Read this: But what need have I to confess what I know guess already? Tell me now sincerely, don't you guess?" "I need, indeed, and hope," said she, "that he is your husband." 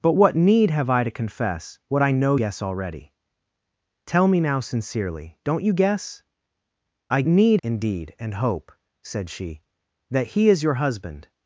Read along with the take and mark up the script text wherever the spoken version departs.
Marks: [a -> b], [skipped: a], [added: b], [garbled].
But what need have I to confess what I know guess already? Tell me now sincerely, don't you guess?" "I need, indeed, and hope," said she, "that he is your husband."